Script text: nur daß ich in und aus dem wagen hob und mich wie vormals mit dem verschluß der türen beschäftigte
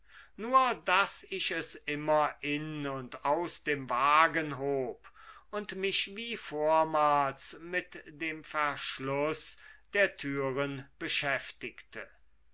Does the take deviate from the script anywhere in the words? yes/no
yes